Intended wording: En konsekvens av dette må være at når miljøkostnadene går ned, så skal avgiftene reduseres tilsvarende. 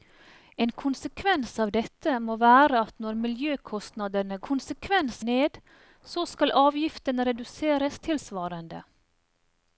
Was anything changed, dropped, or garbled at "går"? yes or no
yes